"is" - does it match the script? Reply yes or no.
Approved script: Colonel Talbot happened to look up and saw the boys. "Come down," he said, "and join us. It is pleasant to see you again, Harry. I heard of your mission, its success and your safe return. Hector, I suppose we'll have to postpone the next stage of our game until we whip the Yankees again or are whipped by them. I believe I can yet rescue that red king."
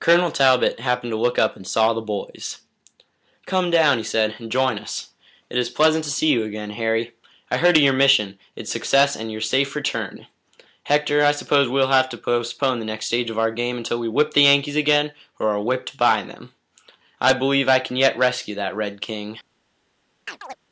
yes